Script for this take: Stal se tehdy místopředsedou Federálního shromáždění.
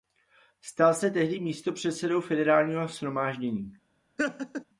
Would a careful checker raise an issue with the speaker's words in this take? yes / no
no